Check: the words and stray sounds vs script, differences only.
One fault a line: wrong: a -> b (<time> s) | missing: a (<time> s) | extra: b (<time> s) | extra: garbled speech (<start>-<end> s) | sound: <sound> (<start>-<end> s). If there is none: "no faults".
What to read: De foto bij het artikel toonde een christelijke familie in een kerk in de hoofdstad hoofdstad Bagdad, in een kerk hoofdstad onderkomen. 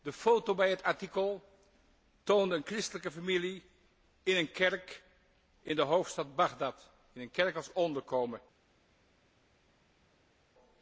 missing: hoofdstad (6.3 s)
wrong: hoofdstad -> als (7.5 s)